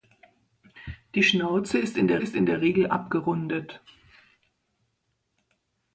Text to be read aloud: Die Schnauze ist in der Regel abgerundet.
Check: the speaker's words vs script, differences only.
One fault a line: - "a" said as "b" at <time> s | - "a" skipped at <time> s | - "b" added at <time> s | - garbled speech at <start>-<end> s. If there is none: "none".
- "ist in der" added at 2.2 s